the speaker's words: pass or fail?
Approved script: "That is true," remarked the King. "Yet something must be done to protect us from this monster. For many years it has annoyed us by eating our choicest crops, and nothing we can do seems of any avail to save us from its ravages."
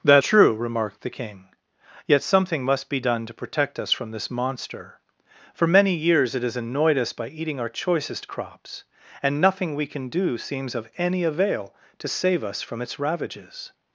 fail